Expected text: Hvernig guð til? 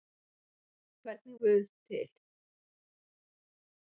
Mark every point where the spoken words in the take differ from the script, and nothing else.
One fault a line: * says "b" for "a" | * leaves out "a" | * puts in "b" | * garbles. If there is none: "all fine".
all fine